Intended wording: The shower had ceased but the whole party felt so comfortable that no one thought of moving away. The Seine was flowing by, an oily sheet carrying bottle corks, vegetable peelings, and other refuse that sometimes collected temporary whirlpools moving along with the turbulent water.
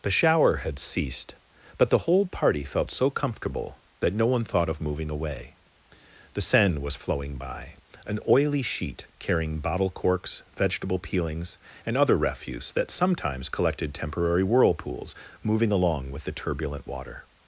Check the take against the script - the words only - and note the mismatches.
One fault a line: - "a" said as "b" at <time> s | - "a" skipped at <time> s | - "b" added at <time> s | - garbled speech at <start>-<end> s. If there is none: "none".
none